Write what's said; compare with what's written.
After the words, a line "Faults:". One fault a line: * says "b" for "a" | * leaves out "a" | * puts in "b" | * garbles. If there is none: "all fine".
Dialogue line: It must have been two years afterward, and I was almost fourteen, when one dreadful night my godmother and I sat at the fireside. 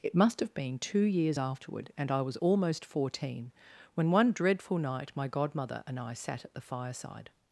It must have been two years afterward, and I was almost fourteen, when one dreadful night my godmother and I sat at the fireside.
Faults:
all fine